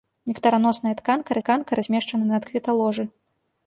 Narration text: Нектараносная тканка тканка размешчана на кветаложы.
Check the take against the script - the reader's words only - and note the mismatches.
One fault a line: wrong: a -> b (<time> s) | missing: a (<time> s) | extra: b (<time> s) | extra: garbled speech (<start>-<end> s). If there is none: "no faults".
no faults